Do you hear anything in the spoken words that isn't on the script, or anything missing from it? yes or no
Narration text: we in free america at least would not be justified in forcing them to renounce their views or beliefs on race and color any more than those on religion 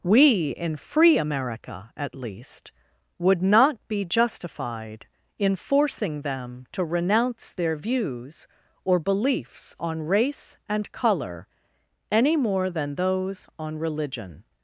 no